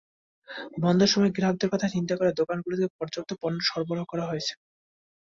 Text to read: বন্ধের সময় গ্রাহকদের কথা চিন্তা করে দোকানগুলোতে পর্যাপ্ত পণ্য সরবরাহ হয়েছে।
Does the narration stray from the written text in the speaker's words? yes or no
yes